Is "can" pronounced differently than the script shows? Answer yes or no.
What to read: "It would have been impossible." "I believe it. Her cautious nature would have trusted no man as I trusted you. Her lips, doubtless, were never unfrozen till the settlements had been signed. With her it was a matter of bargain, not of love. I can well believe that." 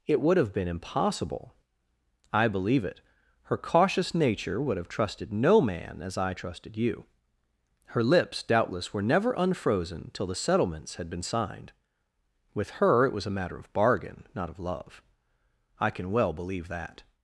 no